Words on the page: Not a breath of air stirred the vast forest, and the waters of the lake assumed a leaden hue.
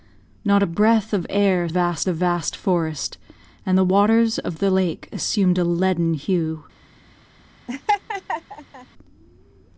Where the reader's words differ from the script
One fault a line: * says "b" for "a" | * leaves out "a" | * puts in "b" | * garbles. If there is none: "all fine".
* says "vast" for "stirred"